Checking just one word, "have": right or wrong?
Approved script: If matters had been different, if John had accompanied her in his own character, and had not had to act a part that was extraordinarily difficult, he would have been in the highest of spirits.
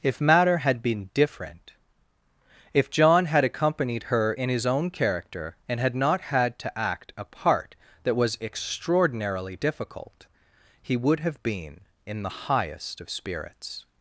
right